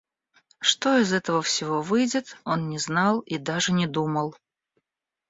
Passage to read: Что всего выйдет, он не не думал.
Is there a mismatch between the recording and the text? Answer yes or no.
yes